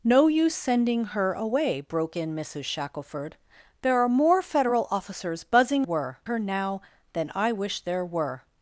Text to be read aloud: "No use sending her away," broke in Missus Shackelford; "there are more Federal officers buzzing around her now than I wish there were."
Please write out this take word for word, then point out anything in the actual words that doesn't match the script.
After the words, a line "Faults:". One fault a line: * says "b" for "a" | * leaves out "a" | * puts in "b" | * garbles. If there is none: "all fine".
"No use sending her away," broke in Missus Shackelford; "there are more Federal officers buzzing were her now than I wish there were."
Faults:
* says "were" for "around"